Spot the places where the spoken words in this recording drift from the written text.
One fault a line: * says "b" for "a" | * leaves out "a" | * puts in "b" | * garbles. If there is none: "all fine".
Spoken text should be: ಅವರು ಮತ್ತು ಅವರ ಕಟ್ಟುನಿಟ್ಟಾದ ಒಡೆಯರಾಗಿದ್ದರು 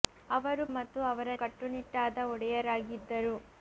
all fine